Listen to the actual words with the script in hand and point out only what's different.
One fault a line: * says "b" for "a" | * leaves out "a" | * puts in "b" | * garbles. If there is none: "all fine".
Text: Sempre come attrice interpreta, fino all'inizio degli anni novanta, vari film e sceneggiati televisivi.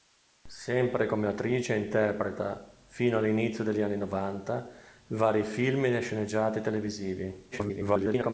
* garbles